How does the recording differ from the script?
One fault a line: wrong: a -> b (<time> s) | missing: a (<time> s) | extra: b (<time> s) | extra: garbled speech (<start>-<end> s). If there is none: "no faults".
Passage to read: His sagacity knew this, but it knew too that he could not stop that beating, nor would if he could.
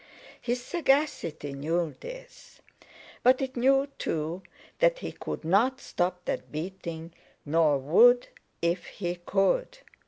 no faults